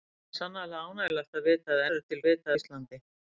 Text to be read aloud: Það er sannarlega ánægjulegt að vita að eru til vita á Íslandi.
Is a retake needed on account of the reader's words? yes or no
no